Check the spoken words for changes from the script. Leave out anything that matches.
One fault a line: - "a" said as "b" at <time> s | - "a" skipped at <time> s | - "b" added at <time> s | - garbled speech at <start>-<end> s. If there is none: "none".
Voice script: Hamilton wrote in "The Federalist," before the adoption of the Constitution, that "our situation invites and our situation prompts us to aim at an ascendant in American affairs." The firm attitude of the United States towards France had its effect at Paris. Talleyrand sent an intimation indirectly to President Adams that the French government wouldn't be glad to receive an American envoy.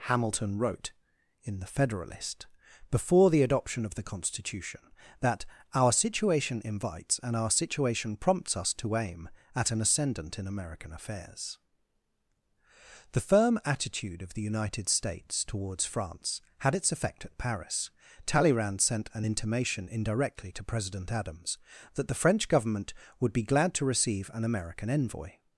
- "wouldn't" said as "would" at 23.2 s